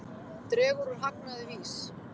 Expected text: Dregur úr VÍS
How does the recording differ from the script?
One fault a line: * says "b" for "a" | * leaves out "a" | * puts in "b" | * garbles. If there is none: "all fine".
* puts in "hagnaði"